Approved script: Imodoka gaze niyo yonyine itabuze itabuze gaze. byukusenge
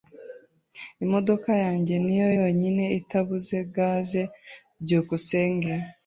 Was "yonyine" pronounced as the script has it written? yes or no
yes